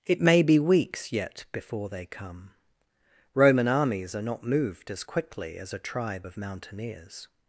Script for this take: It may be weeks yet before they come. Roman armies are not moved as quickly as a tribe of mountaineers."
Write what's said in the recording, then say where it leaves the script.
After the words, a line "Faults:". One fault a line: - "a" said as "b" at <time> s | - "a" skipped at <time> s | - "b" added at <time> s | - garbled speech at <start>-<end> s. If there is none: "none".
It may be weeks yet before they come. Roman armies are not moved as quickly as a tribe of mountaineers."
Faults:
none